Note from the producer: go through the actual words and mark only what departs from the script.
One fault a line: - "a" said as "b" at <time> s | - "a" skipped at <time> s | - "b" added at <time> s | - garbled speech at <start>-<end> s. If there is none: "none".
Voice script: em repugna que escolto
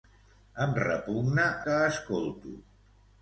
none